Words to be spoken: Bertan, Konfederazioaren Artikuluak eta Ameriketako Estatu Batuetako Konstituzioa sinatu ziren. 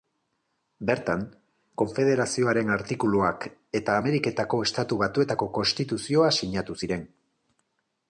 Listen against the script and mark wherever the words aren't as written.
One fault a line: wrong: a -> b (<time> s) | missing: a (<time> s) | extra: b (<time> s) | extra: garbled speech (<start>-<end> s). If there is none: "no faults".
no faults